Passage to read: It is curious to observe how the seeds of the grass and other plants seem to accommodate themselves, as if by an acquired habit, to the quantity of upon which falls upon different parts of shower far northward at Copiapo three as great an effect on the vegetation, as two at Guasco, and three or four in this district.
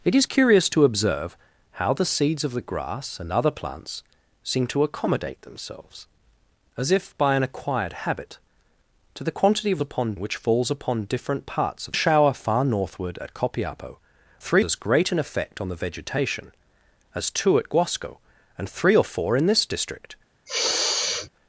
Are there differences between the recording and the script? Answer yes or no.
no